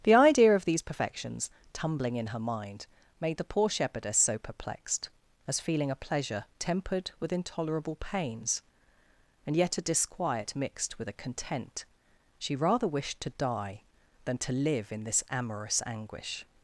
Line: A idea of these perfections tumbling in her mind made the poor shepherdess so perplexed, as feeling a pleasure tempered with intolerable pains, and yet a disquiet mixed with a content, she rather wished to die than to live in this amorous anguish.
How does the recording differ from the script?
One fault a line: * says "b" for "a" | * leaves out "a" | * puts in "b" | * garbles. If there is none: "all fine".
* says "The" for "A"